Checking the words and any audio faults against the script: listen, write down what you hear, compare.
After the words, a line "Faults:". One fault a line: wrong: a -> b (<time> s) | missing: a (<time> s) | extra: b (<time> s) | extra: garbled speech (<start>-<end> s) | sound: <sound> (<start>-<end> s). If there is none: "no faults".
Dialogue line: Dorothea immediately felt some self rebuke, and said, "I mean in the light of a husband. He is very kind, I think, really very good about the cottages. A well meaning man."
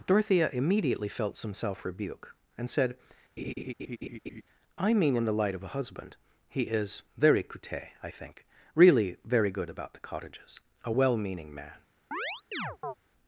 Dorothea immediately felt some self rebuke, and said, "I mean in the light of a husband. He is very coute, I think, really very good about the cottages. A well meaning man."
Faults:
sound: laugh (3.4-4.4 s)
wrong: kind -> coute (7.4 s)
sound: chirp (12.1-12.9 s)